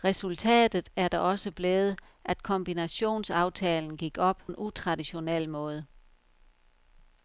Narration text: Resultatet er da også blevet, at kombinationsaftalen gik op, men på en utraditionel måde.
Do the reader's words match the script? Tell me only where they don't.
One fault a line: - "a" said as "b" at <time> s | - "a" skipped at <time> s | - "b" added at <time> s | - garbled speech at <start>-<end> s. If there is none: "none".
- "men på" skipped at 4.4 s